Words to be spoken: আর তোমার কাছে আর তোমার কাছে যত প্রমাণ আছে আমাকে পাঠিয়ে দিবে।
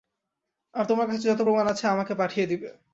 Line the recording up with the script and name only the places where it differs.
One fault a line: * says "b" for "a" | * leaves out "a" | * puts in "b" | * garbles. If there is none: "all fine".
* leaves out "আর তোমার কাছে"